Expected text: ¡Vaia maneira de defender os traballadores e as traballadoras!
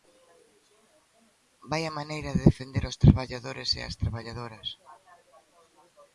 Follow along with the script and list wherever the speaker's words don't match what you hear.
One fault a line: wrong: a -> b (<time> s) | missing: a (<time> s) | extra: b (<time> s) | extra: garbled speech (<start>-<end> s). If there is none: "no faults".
no faults